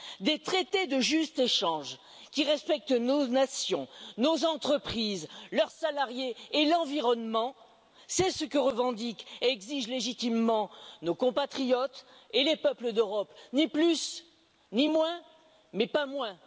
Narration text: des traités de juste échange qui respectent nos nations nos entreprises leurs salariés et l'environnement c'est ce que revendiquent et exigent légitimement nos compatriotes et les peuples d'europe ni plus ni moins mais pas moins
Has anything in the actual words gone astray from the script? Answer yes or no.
no